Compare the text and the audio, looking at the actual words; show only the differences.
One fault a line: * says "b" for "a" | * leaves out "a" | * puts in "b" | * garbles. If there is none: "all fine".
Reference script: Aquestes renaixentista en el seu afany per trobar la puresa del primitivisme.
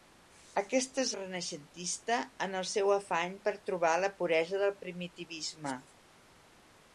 all fine